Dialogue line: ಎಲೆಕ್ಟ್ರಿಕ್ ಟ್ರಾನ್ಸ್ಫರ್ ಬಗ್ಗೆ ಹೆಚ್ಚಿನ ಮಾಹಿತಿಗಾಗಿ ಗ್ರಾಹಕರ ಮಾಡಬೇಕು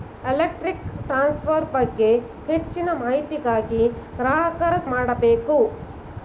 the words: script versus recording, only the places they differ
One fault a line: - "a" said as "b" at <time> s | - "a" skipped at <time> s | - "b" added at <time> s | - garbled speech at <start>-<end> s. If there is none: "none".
none